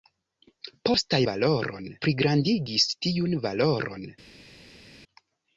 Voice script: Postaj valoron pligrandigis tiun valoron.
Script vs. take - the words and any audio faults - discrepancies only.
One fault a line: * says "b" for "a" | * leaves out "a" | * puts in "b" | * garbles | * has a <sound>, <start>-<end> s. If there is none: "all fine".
all fine